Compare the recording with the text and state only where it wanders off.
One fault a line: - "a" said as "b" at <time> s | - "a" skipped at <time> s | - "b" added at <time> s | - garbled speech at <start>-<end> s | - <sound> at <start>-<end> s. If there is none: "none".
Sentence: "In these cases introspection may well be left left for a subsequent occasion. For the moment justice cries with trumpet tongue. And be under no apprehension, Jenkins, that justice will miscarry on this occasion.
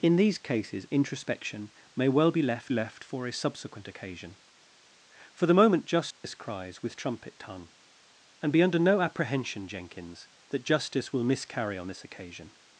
- dropout at 6.1-6.2 s